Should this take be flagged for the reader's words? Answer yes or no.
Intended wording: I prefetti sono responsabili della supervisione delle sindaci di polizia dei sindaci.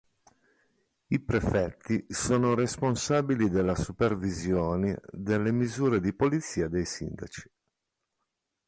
yes